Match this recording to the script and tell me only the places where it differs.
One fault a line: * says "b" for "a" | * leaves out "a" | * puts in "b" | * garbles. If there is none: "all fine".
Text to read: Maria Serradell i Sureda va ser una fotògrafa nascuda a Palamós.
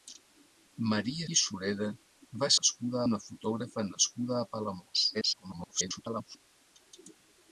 * leaves out "Serradell"
* says "nascuda" for "ser"
* garbles